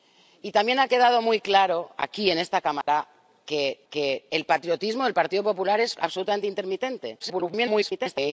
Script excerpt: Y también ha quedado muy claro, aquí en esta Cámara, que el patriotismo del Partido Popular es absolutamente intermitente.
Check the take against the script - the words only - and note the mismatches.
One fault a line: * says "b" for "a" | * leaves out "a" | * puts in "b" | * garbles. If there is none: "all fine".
* puts in "que"
* garbles